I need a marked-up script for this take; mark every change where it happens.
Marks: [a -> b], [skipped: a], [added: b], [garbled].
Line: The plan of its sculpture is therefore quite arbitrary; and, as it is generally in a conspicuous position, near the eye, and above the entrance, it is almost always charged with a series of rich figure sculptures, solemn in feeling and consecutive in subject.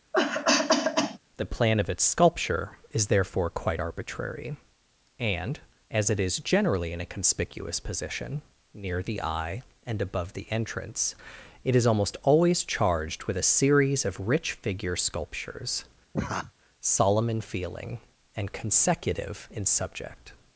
The plan of its sculpture is therefore quite arbitrary; and, as it is generally in a conspicuous position, near the eye, and above the entrance, it is almost always charged with a series of rich figure sculptures, solemn in feeling and consecutive in subject.